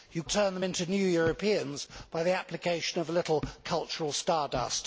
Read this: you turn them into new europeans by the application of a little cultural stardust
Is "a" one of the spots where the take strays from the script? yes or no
no